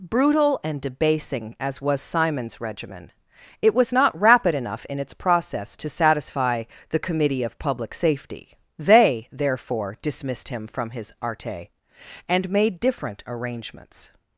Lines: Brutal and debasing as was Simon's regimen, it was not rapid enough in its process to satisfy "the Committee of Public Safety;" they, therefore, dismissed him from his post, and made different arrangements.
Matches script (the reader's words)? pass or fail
fail